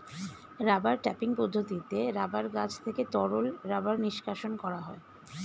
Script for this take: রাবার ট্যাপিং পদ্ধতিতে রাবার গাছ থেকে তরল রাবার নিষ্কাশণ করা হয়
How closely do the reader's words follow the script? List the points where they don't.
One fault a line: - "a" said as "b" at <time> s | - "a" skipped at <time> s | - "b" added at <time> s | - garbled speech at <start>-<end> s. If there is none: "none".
none